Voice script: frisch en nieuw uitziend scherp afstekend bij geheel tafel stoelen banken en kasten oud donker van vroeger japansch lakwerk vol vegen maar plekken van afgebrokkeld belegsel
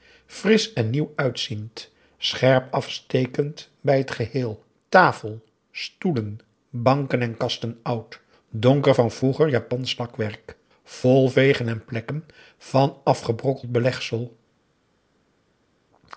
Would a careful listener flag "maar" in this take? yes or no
yes